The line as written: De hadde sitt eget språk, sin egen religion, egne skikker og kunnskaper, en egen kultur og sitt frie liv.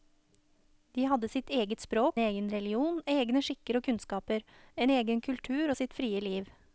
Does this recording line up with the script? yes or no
no